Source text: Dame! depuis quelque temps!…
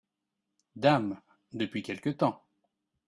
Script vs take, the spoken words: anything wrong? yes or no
no